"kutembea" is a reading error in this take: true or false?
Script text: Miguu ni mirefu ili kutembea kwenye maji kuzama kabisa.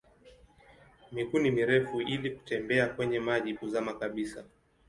false